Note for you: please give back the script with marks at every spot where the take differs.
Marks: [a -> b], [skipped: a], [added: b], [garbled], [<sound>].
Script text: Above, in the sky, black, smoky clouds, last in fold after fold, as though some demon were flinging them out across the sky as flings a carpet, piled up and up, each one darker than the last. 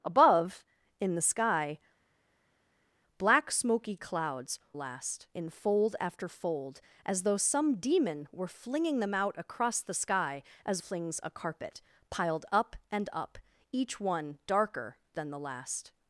Above, in the sky, black, smoky clouds, last in fold after fold, as though some demon were flinging them out across the sky as flings a carpet, piled up and up, each one darker than the last.